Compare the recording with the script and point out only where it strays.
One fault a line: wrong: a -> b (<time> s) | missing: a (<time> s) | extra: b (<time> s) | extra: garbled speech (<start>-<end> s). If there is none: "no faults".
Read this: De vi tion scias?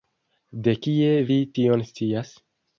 extra: kie (0.9 s)